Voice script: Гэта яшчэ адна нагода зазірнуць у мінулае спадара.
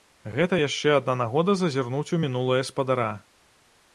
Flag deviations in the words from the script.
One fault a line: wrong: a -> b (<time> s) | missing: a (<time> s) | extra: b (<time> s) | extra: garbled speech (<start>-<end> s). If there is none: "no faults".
no faults